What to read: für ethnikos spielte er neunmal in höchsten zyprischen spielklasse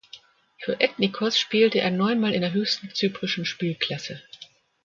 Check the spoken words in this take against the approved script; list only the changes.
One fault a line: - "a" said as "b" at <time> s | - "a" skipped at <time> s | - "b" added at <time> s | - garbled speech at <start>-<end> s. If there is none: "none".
- "der" added at 2.4 s